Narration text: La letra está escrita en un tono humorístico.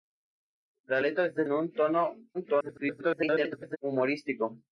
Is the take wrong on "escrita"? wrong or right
wrong